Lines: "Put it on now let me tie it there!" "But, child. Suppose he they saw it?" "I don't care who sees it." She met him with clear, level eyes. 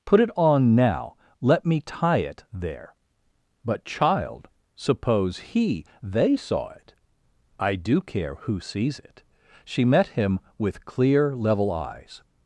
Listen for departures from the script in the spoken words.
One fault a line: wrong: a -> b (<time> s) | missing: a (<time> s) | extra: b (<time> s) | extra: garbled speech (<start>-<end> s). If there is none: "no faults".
wrong: don't -> do (7.7 s)